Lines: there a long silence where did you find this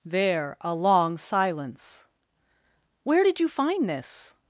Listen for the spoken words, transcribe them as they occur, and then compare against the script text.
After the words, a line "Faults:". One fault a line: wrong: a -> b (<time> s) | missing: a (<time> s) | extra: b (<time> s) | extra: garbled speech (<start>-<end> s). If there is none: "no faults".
there a long silence where did you find this
Faults:
no faults